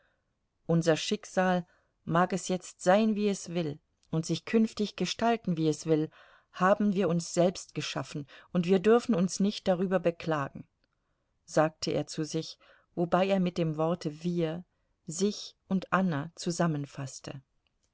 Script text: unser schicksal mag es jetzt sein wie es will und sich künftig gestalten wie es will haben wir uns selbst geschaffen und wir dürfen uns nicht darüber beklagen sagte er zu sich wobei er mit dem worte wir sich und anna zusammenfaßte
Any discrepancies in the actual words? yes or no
no